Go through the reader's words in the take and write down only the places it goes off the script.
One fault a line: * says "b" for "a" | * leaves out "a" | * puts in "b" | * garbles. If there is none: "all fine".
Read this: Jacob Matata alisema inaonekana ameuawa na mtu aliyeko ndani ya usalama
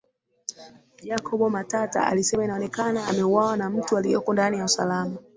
all fine